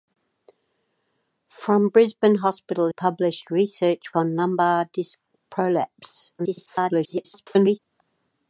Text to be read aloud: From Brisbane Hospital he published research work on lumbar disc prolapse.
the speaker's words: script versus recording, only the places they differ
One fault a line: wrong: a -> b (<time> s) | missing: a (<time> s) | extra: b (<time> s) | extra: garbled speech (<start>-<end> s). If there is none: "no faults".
missing: he (2.9 s)
missing: work (4.1 s)
extra: garbled speech (6.4-7.8 s)